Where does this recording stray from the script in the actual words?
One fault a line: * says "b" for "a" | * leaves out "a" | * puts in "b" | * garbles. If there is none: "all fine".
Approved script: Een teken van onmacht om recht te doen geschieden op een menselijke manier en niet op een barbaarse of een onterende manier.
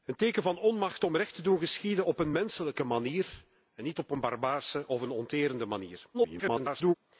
* garbles